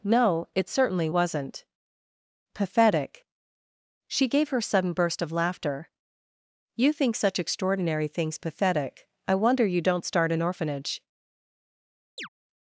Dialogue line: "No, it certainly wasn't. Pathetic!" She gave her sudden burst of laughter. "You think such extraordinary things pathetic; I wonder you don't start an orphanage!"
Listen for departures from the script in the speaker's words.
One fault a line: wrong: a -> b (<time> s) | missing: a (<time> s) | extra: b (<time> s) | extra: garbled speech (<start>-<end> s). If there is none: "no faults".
no faults